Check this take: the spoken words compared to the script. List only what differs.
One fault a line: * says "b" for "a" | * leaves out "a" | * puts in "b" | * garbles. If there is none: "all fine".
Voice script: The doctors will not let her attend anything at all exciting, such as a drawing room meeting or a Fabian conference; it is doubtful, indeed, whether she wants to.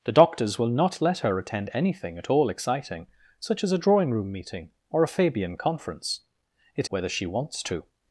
* leaves out "is doubtful indeed"